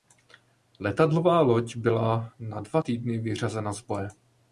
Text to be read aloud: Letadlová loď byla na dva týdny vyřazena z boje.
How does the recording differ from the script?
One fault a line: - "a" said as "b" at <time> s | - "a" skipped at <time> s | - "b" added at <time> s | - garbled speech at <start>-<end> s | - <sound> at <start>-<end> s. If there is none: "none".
none